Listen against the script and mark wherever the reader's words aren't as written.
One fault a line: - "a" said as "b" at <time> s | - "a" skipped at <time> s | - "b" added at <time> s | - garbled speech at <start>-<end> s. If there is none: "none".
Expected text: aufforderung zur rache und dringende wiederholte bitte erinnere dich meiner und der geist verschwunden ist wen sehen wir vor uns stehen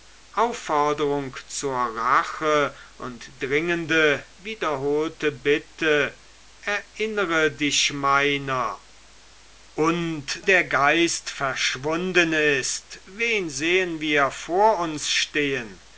none